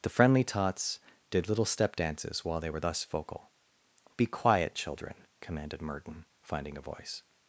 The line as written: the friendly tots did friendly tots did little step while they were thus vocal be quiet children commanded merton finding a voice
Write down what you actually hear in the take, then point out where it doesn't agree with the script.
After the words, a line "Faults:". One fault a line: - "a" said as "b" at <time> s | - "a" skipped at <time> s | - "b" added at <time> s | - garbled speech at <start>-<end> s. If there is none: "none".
the friendly tots did little step dances while they were thus vocal be quiet children commanded merton finding a voice
Faults:
- "friendly tots did" skipped at 1.5 s
- "dances" added at 1.9 s